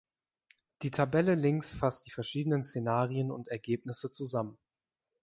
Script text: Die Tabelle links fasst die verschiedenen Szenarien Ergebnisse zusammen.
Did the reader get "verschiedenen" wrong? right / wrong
right